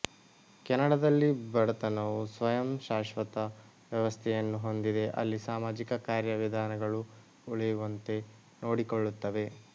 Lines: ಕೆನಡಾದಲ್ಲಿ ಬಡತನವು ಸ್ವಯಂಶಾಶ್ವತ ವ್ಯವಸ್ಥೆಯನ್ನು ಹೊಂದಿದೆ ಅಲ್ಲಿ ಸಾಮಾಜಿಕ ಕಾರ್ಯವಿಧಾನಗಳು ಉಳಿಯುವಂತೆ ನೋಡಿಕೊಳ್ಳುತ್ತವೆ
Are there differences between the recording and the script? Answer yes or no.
no